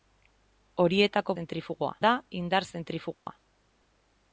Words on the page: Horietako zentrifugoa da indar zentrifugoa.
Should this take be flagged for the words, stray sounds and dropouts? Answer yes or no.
yes